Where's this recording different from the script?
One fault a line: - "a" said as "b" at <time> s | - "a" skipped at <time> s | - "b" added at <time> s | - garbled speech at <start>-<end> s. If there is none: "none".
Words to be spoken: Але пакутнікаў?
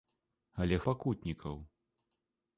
none